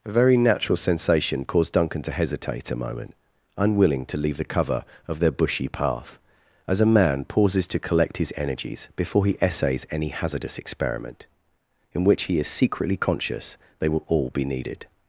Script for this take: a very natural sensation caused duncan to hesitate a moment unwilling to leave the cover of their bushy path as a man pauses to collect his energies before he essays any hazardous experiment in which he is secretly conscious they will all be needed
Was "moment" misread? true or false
false